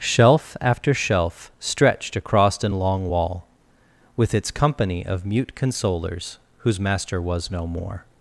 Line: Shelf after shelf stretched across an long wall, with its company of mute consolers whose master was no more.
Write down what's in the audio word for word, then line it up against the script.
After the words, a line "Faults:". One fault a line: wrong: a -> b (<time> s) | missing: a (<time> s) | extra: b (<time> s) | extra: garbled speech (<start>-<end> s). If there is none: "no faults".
Shelf after shelf stretched across an long wall, with its company of mute consolers whose master was no more.
Faults:
no faults